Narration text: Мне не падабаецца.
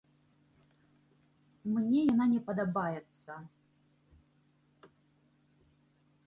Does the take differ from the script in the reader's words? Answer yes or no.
yes